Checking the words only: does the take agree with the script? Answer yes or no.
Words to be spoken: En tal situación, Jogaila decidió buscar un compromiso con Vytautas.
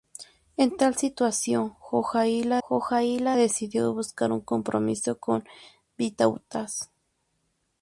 no